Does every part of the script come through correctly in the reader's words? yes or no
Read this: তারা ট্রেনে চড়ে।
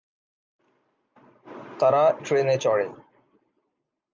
yes